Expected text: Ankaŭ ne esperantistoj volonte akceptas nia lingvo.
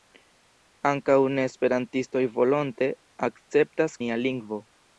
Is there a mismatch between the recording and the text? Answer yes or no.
no